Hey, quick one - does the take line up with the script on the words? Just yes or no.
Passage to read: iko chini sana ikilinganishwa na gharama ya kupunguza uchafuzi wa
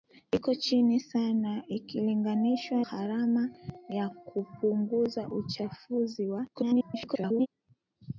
no